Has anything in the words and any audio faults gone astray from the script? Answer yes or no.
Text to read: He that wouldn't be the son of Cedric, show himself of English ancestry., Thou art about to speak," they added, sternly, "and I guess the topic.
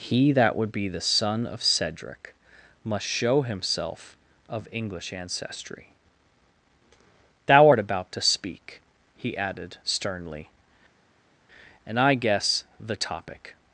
yes